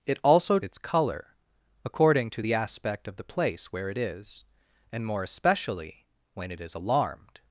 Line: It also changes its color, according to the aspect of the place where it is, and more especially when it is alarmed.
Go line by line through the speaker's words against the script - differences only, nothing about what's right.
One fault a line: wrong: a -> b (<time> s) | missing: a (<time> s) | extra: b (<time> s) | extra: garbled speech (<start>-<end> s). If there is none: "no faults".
missing: changes (0.6 s)